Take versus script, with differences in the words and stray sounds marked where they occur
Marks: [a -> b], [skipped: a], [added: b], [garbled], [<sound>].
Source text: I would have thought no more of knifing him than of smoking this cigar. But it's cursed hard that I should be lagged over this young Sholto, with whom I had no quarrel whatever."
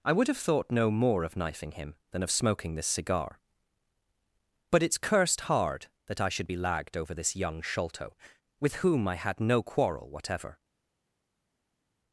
I would have thought no more of knifing him than of smoking this cigar. But it's cursed hard that I should be lagged over this young Sholto, with whom I had no quarrel whatever."